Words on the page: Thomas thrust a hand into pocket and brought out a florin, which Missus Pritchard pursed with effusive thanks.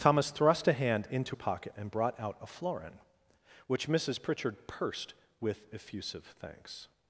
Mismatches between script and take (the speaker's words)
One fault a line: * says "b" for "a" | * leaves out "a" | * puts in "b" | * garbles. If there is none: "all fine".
all fine